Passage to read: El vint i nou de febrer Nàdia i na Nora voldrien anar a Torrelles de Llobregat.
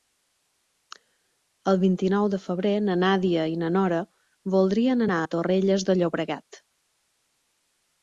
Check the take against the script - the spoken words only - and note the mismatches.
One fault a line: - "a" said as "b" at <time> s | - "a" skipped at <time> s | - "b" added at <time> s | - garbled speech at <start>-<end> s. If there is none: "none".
- "na" added at 2.9 s